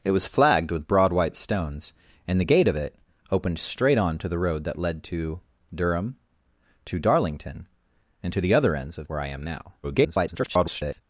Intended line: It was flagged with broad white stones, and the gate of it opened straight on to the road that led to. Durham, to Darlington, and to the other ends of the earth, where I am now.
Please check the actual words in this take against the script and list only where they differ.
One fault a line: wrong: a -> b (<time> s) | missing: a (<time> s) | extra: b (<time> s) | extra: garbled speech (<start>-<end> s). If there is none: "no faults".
missing: the earth (9.1 s)
extra: garbled speech (9.8-11.0 s)